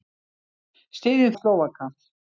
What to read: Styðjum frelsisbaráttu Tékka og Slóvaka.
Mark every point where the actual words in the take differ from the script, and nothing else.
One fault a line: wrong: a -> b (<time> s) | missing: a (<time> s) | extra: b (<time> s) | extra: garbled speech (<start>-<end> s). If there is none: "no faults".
missing: frelsisbaráttu Tékka (1.4 s)